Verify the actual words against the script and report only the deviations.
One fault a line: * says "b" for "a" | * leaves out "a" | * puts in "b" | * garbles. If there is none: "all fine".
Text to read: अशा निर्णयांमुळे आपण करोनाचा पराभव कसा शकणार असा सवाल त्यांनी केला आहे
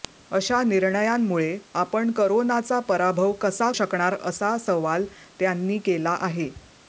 all fine